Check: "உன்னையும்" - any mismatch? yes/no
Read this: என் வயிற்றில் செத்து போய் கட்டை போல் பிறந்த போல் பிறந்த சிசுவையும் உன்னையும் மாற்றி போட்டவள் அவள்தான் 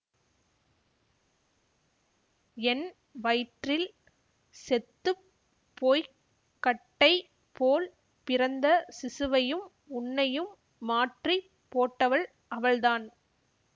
no